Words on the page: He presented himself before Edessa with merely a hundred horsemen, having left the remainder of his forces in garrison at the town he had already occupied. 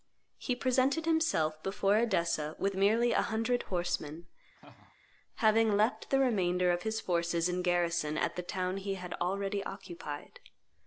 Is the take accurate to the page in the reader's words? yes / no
yes